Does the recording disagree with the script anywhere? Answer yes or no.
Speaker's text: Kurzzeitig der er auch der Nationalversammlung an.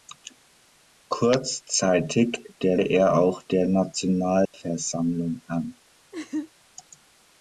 no